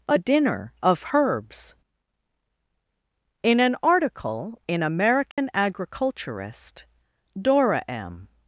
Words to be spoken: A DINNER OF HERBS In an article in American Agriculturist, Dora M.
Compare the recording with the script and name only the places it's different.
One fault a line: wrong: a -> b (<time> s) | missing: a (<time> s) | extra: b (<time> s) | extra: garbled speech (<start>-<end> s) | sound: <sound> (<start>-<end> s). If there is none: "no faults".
sound: dropout (5.3-5.4 s)